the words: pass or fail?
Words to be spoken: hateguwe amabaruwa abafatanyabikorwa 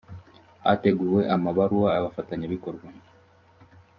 pass